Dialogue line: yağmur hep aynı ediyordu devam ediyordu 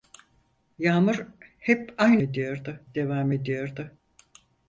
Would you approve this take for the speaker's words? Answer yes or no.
yes